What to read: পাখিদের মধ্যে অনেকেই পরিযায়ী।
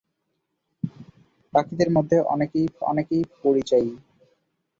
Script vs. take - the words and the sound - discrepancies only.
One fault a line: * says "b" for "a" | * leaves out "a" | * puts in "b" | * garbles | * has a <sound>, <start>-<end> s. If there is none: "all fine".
* puts in "অনেকেই"